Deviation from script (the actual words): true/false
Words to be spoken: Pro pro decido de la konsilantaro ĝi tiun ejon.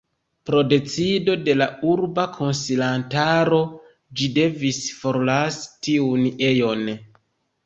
true